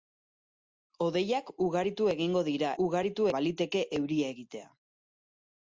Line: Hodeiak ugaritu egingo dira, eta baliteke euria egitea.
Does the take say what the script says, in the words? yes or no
no